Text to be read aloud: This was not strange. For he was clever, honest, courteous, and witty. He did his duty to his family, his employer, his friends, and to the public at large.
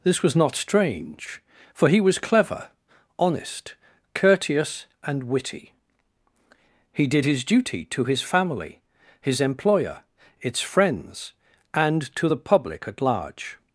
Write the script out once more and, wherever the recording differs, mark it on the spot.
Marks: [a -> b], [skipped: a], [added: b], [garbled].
This was not strange. For he was clever, honest, courteous, and witty. He did his duty to his family, his employer, [his -> its] friends, and to the public at large.